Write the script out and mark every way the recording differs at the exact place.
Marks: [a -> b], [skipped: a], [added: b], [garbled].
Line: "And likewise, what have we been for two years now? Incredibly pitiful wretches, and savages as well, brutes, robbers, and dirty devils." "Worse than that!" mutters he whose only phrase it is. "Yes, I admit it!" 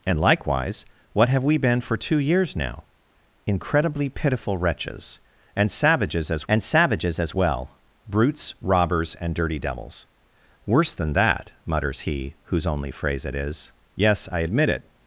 "And likewise, what have we been for two years now? Incredibly pitiful wretches, and savages as [added: and savages as] well, brutes, robbers, and dirty devils." "Worse than that!" mutters he whose only phrase it is. "Yes, I admit it!"